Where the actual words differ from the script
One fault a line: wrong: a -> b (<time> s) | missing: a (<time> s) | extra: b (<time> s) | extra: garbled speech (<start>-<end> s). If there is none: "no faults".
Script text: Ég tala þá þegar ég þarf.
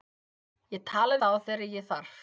no faults